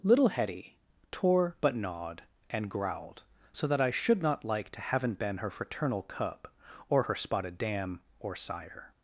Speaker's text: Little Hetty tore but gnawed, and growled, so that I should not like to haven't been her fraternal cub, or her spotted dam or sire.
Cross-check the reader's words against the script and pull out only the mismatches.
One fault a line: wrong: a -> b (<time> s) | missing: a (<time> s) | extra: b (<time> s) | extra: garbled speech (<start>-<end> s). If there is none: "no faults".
no faults